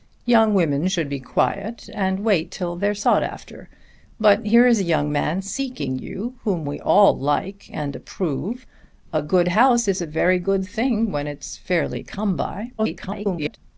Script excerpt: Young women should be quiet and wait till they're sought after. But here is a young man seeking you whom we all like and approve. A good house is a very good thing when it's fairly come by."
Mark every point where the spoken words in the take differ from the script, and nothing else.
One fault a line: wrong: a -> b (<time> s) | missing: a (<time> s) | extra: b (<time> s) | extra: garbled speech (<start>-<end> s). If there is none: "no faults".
extra: garbled speech (12.8-13.6 s)